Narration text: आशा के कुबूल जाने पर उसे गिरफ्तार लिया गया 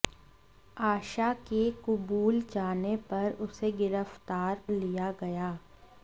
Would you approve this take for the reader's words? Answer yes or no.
yes